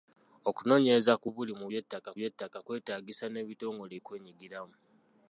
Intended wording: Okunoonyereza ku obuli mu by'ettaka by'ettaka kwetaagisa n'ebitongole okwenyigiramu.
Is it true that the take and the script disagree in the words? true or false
false